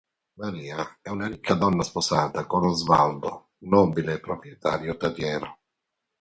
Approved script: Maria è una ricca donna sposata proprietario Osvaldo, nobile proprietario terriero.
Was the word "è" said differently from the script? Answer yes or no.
no